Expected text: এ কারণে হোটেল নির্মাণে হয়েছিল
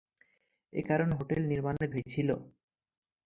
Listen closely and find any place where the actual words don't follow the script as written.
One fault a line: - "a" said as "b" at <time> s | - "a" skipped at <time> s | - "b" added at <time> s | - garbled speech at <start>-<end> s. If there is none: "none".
none